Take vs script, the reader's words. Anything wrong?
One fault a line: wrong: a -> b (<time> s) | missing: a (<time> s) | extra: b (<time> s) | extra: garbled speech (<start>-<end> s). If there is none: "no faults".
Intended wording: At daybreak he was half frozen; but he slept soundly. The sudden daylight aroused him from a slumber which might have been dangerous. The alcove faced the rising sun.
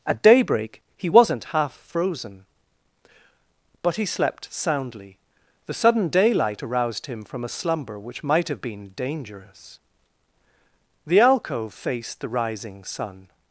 wrong: was -> wasn't (1.1 s)